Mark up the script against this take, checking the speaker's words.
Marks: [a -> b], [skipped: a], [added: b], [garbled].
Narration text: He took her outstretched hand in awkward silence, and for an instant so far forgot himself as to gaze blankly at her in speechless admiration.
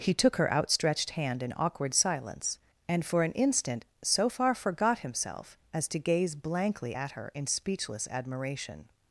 He took her outstretched hand in awkward silence, and for an instant so far forgot himself as to gaze blankly at her in speechless admiration.